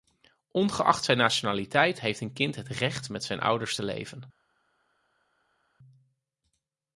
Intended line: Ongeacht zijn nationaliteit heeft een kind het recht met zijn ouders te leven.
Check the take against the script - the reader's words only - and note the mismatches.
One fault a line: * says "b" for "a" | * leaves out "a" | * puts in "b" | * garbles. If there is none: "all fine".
all fine